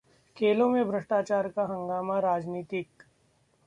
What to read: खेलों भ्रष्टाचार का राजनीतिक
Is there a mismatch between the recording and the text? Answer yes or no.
yes